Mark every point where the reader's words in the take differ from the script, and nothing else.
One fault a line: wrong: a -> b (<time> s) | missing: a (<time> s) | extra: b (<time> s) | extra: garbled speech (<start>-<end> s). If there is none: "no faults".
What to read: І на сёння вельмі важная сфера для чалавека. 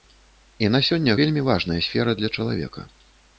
no faults